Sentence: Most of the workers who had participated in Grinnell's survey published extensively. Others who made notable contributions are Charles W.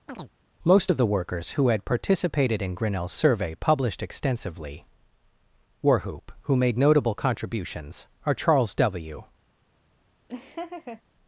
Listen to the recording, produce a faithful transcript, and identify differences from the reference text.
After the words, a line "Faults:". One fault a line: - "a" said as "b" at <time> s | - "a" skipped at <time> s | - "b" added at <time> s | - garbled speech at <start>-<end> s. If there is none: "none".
Most of the workers who had participated in Grinnell's survey published extensively. Warhoop who made notable contributions are Charles W.
Faults:
- "Others" said as "Warhoop" at 5.8 s